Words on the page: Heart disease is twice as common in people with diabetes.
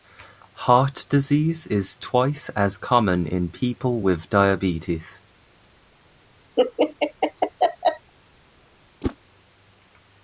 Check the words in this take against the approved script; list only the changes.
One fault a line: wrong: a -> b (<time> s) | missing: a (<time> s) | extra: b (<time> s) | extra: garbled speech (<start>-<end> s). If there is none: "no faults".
no faults